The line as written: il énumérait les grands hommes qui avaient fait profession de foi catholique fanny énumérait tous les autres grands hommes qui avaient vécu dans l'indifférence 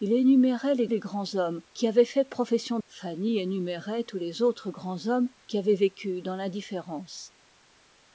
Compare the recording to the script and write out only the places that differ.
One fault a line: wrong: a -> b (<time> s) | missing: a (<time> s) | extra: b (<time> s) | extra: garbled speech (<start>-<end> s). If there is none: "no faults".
extra: les (0.8 s)
missing: de foi catholique (2.8 s)